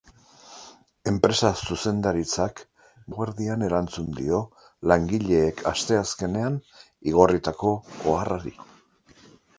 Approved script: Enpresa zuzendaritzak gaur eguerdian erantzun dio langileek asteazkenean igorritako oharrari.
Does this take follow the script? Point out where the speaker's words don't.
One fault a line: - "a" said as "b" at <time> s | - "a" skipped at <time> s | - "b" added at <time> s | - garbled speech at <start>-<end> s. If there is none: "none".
- "gaur" skipped at 2.6 s